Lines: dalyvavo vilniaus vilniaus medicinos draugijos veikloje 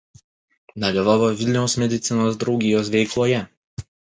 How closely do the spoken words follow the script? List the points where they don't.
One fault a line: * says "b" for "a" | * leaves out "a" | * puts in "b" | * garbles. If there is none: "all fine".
* leaves out "vilniaus"